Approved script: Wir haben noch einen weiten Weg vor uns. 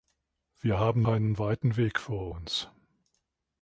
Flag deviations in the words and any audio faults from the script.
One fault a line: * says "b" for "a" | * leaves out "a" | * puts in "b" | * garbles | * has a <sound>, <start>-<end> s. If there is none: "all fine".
* leaves out "noch"